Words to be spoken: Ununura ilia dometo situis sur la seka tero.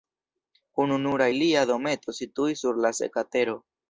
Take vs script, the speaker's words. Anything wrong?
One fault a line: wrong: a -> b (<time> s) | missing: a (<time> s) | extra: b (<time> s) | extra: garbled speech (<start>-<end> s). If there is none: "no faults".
no faults